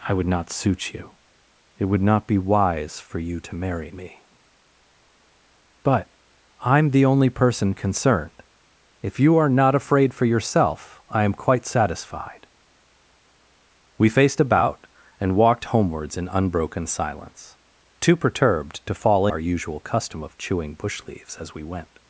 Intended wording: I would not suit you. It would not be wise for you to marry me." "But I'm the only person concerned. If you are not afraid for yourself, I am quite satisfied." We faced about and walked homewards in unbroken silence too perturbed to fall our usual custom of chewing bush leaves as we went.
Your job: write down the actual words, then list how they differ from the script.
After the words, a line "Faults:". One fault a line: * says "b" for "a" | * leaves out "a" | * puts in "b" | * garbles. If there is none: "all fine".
I would not suit you. It would not be wise for you to marry me." "But I'm the only person concerned. If you are not afraid for yourself, I am quite satisfied." We faced about and walked homewards in unbroken silence too perturbed to fall our usual custom of chewing bush leaves as we went.
Faults:
all fine